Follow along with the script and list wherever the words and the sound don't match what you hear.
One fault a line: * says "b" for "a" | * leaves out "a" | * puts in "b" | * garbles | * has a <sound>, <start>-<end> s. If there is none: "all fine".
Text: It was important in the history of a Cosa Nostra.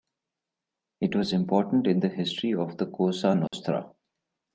* says "the" for "a"
* has a dropout, 3.5-3.5 s